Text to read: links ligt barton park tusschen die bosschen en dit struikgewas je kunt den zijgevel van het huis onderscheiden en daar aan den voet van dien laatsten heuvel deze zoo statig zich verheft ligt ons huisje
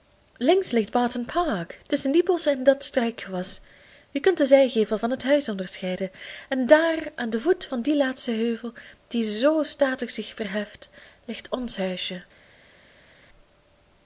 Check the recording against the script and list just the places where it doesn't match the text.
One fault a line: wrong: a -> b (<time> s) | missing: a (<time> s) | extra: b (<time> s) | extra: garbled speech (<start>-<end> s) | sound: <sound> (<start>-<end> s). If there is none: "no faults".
wrong: dit -> dat (2.6 s)
wrong: deze -> die (9.1 s)